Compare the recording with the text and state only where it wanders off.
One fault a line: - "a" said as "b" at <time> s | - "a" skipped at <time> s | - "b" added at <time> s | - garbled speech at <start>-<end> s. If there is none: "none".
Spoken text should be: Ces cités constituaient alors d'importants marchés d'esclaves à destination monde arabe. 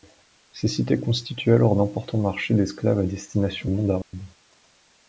none